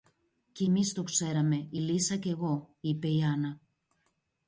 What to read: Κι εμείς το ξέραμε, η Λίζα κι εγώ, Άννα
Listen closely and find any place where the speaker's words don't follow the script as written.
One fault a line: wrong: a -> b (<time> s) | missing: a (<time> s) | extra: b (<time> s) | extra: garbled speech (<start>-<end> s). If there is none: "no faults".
extra: είπε η (2.8 s)